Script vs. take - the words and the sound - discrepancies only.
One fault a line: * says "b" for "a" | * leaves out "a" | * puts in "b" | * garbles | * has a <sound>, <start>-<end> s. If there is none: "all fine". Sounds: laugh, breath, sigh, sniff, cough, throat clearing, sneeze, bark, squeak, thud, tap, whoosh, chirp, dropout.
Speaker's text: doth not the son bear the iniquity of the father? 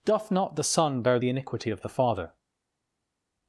all fine